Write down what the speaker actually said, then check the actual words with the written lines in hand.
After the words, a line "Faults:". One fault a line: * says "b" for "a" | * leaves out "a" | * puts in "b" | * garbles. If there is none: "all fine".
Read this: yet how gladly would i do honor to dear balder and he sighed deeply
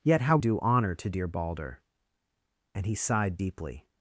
yet how do honor to dear balder and he sighed deeply
Faults:
* leaves out "gladly would i"